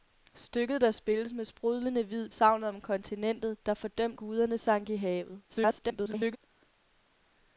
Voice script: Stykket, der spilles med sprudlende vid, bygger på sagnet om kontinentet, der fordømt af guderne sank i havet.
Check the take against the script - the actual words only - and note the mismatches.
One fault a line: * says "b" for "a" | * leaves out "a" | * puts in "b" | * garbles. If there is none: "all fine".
* leaves out "bygger på"
* leaves out "af"
* garbles